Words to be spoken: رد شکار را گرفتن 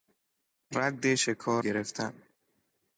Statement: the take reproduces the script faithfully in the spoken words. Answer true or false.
false